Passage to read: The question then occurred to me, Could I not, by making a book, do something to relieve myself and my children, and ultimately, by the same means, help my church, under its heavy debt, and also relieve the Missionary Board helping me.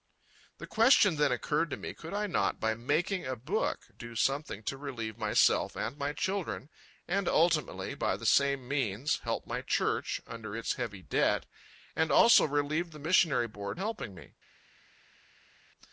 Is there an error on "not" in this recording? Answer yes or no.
no